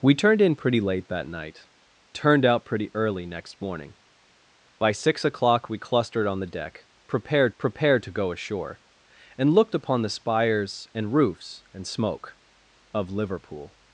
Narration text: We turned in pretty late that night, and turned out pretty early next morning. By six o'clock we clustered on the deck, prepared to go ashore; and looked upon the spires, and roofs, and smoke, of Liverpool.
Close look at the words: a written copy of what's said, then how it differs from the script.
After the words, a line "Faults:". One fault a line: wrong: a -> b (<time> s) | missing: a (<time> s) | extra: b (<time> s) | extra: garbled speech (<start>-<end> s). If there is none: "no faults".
We turned in pretty late that night, turned out pretty early next morning. By six o'clock we clustered on the deck, prepared prepared to go ashore; and looked upon the spires, and roofs, and smoke, of Liverpool.
Faults:
missing: and (1.7 s)
extra: prepared (7.6 s)